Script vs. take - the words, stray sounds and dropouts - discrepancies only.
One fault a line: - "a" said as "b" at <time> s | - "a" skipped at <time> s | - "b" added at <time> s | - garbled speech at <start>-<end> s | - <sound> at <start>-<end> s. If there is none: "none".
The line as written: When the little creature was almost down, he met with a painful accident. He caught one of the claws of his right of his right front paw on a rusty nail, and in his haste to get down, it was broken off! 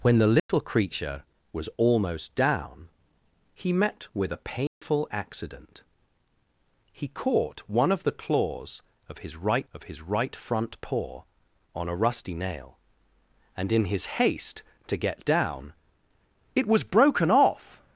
- dropout at 0.4-0.5 s
- dropout at 4.7-4.8 s